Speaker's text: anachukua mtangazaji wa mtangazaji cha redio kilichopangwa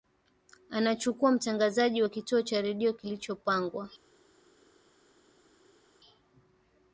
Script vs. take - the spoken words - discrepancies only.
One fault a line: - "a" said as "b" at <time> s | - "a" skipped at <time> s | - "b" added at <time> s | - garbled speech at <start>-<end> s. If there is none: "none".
- "mtangazaji" said as "kituo" at 2.1 s